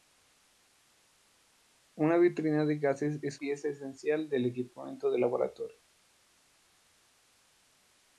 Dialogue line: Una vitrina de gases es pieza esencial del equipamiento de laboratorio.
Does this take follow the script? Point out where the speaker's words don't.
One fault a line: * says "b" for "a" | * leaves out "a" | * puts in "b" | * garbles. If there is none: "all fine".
all fine